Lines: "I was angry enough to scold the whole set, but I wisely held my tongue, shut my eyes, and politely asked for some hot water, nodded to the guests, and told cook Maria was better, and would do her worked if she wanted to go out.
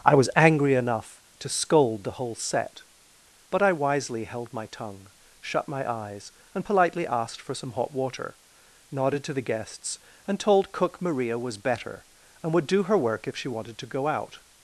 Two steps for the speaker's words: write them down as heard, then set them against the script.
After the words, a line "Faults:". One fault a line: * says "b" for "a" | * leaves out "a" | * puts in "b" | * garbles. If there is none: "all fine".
"I was angry enough to scold the whole set, but I wisely held my tongue, shut my eyes, and politely asked for some hot water, nodded to the guests, and told cook Maria was better, and would do her work if she wanted to go out.
Faults:
* says "work" for "worked"